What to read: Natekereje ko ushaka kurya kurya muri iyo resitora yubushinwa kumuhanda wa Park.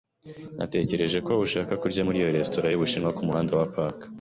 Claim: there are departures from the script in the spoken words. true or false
true